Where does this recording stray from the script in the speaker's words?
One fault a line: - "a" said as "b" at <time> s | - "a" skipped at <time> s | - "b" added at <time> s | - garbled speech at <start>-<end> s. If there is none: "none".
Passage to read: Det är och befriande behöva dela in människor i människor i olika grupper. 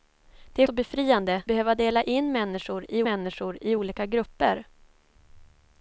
none